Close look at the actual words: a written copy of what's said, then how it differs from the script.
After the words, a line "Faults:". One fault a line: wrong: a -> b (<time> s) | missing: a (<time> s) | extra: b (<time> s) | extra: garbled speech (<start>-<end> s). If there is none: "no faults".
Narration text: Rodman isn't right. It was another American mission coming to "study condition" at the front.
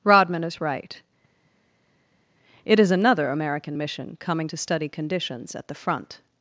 Rodman is right. It is another American mission coming to "study conditions" at the front.
Faults:
wrong: isn't -> is (0.4 s)
wrong: was -> is (2.8 s)
wrong: condition -> conditions (4.9 s)